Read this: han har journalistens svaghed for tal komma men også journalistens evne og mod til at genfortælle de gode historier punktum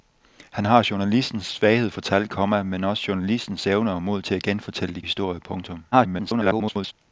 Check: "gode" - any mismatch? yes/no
yes